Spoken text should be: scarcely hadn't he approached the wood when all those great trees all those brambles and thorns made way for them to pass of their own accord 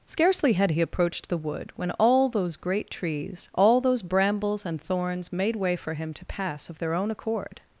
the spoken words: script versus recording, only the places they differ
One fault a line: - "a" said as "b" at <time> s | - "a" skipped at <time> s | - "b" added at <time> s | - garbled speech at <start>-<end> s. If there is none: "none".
- "hadn't" said as "had" at 0.5 s
- "them" said as "him" at 5.9 s